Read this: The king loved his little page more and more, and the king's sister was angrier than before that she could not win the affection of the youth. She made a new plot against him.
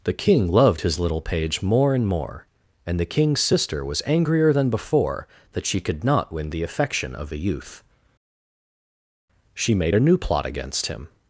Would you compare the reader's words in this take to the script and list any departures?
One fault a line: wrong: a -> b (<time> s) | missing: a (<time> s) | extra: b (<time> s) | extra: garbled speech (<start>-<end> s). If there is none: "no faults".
no faults